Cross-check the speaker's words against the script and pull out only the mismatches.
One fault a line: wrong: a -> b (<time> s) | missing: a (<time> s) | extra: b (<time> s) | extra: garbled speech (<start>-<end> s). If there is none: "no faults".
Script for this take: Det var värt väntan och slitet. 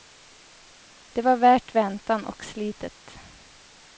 no faults